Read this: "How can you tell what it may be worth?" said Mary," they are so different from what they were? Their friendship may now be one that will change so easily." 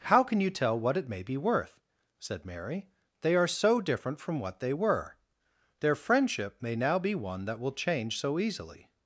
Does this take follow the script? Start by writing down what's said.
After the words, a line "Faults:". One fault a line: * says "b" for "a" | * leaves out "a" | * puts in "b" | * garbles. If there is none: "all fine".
"How can you tell what it may be worth?" said Mary," they are so different from what they were? Their friendship may now be one that will change so easily."
Faults:
all fine